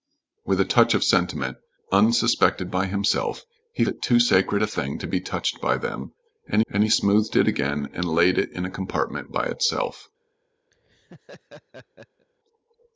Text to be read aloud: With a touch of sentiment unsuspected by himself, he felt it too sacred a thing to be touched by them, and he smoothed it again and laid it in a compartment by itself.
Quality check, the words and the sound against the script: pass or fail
fail